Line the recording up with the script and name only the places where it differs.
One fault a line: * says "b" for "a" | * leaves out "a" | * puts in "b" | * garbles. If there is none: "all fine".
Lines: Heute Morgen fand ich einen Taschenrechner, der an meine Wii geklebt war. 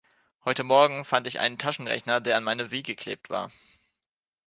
all fine